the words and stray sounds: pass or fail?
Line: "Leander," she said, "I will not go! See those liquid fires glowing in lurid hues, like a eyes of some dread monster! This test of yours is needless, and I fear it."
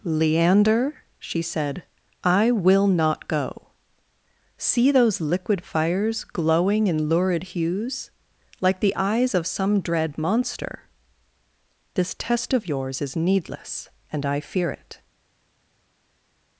fail